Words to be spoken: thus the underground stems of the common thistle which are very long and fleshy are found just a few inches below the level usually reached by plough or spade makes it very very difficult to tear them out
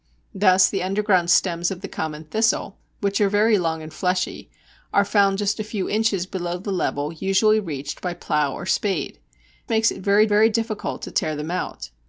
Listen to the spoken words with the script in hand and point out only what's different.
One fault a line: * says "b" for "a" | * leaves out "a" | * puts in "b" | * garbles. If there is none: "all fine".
all fine